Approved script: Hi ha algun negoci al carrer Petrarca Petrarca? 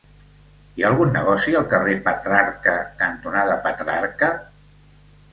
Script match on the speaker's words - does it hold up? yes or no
no